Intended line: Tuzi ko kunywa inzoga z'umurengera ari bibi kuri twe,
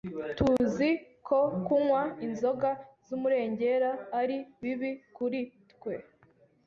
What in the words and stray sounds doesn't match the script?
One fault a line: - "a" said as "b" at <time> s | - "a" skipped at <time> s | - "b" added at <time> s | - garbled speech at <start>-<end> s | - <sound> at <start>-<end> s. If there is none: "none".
- dropout at 0.6-0.6 s